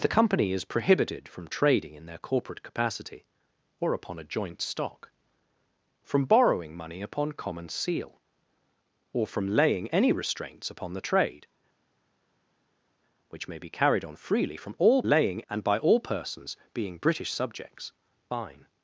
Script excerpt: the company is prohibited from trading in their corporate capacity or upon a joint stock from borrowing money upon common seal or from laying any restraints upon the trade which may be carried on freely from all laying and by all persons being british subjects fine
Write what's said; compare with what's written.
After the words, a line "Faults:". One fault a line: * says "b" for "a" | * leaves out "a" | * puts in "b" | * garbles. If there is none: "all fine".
the company is prohibited from trading in their corporate capacity or upon a joint stock from borrowing money upon common seal or from laying any restraints upon the trade which may be carried on freely from all laying and by all persons being british subjects fine
Faults:
all fine